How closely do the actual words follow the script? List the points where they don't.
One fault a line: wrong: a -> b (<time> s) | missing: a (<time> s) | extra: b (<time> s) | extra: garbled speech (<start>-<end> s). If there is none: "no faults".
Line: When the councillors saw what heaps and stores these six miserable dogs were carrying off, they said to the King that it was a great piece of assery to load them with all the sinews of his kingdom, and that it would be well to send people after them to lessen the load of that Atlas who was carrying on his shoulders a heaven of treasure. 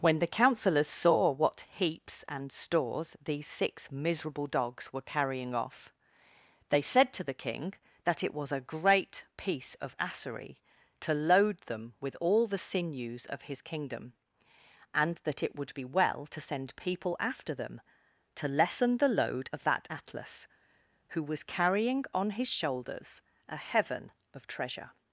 no faults